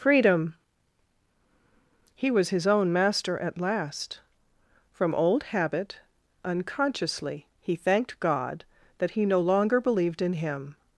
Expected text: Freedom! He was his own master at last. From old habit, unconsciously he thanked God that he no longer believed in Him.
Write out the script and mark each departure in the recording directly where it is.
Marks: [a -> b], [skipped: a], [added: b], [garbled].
Freedom! He was his own master at last. From old habit, unconsciously he thanked God that he no longer believed in Him.